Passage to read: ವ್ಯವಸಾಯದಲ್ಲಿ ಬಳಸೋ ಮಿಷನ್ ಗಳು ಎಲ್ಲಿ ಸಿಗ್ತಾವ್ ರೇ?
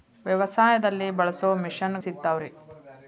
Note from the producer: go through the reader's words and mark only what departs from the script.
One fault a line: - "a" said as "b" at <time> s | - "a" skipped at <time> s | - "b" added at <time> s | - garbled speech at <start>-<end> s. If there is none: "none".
- "ಗಳು ಎಲ್ಲಿ" skipped at 2.0 s